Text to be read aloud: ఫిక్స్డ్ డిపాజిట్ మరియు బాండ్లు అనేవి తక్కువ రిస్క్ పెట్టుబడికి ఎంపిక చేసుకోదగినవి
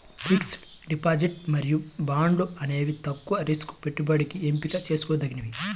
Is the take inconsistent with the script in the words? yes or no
no